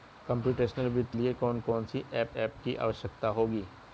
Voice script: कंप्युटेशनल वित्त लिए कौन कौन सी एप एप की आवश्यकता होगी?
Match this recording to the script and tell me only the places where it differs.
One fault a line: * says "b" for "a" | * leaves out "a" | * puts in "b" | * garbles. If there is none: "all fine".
all fine